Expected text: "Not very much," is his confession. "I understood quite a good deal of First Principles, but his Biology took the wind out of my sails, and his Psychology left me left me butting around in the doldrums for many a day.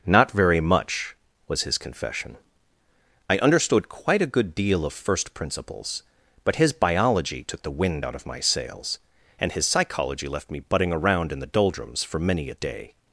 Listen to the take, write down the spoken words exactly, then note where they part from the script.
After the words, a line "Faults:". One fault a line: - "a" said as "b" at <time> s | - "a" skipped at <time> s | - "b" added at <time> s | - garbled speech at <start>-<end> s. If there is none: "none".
"Not very much," was his confession. "I understood quite a good deal of First Principles, but his Biology took the wind out of my sails, and his Psychology left me butting around in the doldrums for many a day.
Faults:
- "is" said as "was" at 1.5 s
- "left me" skipped at 10.6 s